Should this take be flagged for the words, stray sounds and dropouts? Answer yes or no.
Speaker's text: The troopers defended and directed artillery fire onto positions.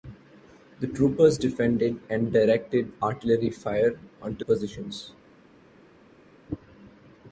no